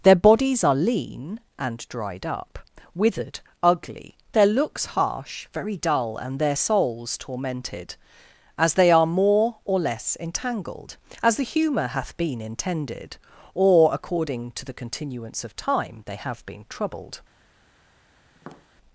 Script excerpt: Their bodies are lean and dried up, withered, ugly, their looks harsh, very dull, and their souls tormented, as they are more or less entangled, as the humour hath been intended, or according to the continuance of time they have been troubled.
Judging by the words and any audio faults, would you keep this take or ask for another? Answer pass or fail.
fail